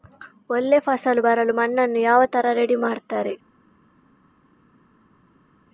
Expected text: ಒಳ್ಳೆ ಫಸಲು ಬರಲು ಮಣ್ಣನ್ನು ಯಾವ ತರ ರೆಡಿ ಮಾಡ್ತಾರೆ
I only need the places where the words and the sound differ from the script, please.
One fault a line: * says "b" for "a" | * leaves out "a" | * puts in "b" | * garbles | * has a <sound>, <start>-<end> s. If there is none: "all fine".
all fine